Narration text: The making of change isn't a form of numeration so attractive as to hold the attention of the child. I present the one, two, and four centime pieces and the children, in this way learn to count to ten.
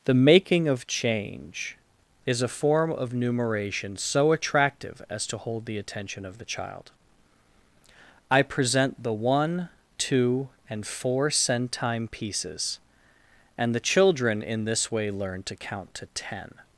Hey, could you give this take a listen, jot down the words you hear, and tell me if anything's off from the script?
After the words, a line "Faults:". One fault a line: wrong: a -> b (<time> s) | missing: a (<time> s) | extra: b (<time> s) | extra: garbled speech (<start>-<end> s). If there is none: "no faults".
The making of change is a form of numeration so attractive as to hold the attention of the child. I present the one, two, and four centime pieces and the children, in this way learn to count to ten.
Faults:
wrong: isn't -> is (2.2 s)